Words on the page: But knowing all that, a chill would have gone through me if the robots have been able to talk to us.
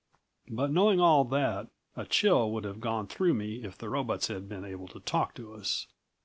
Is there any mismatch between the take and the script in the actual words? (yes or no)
yes